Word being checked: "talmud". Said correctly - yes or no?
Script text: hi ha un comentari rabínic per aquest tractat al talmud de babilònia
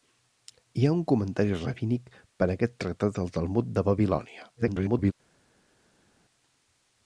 yes